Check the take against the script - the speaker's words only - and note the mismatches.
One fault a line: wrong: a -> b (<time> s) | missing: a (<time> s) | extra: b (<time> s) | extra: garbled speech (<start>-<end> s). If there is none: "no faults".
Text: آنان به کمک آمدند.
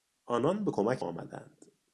no faults